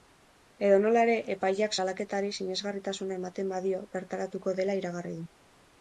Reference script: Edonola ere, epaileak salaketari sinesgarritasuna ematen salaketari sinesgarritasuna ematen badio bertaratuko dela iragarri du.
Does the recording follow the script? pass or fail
fail